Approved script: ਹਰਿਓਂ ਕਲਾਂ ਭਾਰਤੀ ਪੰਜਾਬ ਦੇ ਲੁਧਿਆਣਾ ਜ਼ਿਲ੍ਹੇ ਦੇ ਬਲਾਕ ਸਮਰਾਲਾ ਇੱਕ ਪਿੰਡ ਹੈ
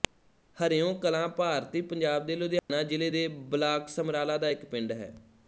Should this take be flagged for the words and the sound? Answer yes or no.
yes